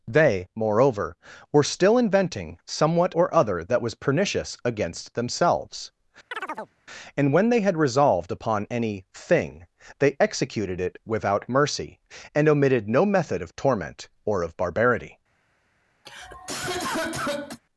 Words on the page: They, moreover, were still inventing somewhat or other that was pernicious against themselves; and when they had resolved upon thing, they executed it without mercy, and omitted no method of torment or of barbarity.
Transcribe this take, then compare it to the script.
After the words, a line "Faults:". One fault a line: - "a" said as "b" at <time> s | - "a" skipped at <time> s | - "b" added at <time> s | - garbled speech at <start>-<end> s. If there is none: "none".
They, moreover, were still inventing somewhat or other that was pernicious against themselves; and when they had resolved upon any thing, they executed it without mercy, and omitted no method of torment or of barbarity.
Faults:
- "any" added at 8.7 s